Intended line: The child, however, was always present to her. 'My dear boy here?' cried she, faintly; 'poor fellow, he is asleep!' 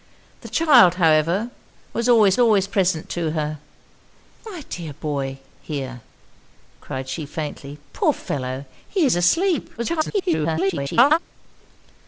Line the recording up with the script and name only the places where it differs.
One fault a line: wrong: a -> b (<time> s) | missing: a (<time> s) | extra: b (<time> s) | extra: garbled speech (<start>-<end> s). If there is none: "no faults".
extra: always (2.4 s)
extra: garbled speech (9.8-11.2 s)